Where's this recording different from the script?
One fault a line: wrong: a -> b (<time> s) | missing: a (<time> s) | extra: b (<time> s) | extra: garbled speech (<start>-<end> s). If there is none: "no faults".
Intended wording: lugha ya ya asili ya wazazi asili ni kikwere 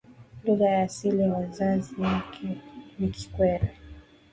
missing: ya (0.8 s)
wrong: asili -> wake (2.0 s)